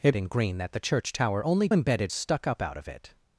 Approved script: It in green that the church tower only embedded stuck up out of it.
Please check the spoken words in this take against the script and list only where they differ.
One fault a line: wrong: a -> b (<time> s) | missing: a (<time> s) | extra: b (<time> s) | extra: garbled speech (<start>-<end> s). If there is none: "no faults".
no faults